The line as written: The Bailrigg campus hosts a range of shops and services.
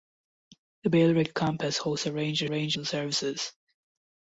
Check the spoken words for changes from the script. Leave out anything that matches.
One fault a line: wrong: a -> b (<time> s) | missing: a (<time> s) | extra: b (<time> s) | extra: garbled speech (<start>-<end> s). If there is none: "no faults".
wrong: shops -> range (2.5 s)